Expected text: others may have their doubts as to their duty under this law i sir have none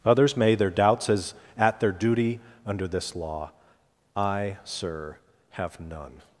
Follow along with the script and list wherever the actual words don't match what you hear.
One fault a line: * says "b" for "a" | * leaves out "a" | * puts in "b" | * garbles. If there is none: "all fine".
* leaves out "have"
* says "at" for "to"